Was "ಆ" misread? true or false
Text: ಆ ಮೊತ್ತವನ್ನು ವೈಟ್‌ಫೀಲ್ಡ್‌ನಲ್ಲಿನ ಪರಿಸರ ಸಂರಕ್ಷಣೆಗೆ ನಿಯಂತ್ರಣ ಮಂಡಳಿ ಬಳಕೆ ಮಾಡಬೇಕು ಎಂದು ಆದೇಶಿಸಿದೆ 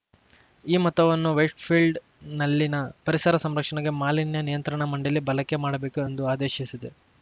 true